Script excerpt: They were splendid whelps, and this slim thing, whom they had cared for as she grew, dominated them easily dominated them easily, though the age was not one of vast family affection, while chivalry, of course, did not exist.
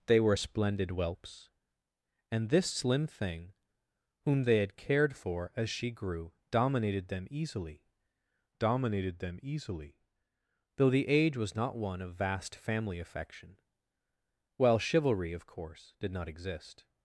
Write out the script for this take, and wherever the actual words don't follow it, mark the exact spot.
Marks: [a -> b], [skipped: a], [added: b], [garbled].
They were splendid whelps, and this slim thing, whom they had cared for as she grew, dominated them easily dominated them easily, though the age was not one of vast family affection, while chivalry, of course, did not exist.